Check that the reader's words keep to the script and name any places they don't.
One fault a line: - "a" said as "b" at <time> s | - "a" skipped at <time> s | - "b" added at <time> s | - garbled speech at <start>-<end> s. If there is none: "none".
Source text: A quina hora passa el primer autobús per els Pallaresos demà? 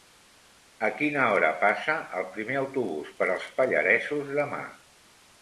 none